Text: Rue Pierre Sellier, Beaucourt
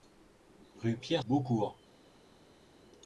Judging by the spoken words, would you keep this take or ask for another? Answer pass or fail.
fail